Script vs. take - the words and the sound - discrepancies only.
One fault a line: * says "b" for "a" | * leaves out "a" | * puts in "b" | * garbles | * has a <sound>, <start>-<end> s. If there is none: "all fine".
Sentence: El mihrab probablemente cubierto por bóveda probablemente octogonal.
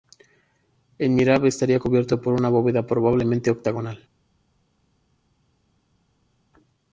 * says "estaría" for "probablemente"
* puts in "una"